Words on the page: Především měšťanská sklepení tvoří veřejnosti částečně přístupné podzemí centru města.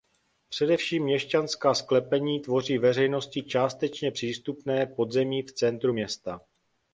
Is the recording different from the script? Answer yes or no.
yes